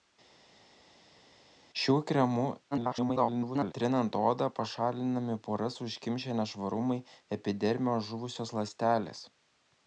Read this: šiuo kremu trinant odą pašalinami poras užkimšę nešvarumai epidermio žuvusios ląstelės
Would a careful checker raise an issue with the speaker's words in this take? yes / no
yes